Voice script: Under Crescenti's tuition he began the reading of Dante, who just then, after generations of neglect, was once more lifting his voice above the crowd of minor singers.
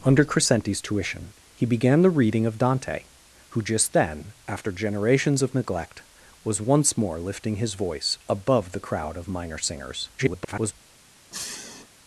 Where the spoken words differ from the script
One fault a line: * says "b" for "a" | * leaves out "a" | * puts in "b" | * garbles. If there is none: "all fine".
* garbles